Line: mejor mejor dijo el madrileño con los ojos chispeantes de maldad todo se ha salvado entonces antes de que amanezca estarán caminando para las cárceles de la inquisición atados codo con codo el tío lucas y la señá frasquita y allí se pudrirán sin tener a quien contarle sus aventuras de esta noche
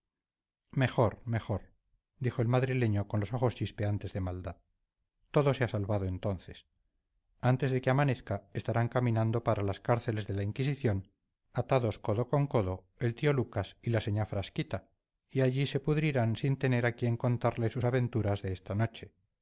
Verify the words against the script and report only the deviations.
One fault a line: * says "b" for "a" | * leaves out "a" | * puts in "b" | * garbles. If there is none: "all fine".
all fine